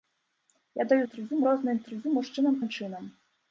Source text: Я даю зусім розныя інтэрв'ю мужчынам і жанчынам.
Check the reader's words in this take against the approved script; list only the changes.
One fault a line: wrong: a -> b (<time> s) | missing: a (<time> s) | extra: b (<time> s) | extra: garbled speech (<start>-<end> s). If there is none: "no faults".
wrong: зусім -> інтэрв'ю (1.1 s)
missing: і (2.5 s)